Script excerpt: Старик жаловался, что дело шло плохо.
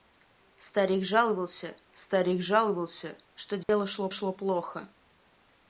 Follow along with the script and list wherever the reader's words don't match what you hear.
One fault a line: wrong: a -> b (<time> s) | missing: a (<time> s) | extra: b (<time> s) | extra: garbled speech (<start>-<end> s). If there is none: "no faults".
extra: старик жаловался (1.9 s)
extra: шло (4.1 s)